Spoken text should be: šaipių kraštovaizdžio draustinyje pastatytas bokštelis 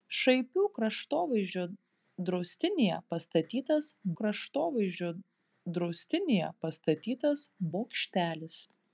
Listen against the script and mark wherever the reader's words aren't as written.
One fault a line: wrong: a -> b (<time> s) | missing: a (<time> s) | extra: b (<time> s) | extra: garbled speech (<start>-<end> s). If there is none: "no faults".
extra: kraštovaizdžio draustinyje pastatytas (4.2 s)